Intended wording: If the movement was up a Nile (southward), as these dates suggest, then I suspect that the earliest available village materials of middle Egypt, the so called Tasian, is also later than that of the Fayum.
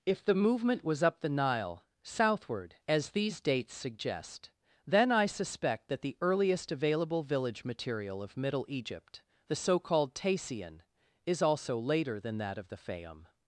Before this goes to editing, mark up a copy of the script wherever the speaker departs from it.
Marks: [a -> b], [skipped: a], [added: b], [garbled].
If the movement was up [a -> the] Nile (southward), as these dates suggest, then I suspect that the earliest available village [materials -> material] of middle Egypt, the so called Tasian, is also later than that of the Fayum.